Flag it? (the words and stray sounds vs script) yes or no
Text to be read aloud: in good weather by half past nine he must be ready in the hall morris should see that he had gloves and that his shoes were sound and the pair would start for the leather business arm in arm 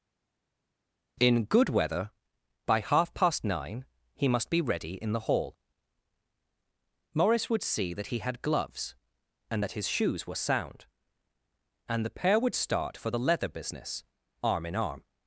yes